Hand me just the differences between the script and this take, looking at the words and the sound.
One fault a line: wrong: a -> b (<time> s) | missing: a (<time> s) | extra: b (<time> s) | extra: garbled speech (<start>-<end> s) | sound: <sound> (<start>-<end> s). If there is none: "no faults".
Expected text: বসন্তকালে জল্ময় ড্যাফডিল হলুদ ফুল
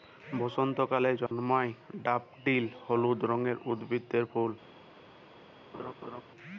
sound: dropout (1.3-1.3 s)
extra: রঙের উদ্ভিদের (3.2 s)
sound: laugh (5.7-6.2 s)